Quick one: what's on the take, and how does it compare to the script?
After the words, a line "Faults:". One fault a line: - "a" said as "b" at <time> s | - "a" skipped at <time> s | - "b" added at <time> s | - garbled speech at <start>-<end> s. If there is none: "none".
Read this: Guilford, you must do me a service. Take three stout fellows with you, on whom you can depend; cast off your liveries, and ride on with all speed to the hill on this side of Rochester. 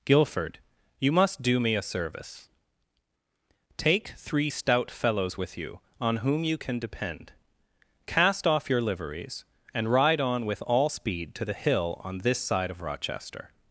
Guilford, you must do me a service. Take three stout fellows with you, on whom you can depend; cast off your liveries, and ride on with all speed to the hill on this side of Rochester.
Faults:
none